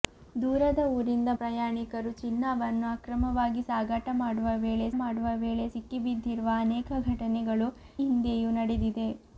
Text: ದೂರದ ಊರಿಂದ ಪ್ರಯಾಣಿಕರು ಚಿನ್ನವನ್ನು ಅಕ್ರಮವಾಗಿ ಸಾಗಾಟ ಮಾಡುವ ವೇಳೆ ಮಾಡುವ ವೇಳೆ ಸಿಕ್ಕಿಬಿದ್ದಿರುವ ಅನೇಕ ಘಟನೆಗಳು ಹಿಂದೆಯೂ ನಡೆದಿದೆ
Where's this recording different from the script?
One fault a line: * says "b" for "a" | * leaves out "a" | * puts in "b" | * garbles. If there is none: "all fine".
all fine